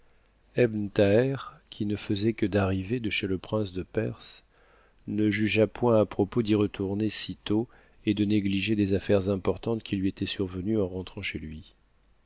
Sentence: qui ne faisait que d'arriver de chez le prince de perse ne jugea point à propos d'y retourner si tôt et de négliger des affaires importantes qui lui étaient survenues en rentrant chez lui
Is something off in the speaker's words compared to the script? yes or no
no